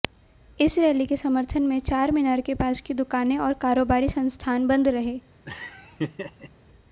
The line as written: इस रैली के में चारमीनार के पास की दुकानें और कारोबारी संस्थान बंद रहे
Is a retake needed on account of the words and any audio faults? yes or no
yes